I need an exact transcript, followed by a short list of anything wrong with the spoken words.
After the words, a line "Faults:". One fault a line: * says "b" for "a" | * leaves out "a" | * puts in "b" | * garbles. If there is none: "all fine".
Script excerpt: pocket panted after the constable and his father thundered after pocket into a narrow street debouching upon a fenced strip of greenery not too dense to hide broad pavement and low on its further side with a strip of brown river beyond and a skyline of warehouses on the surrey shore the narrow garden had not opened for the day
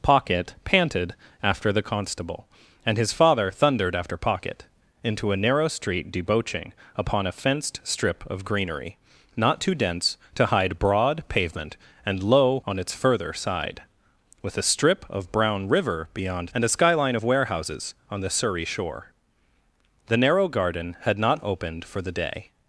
pocket panted after the constable and his father thundered after pocket into a narrow street debouching upon a fenced strip of greenery not too dense to hide broad pavement and low on its further side with a strip of brown river beyond and a skyline of warehouses on the surrey shore the narrow garden had not opened for the day
Faults:
all fine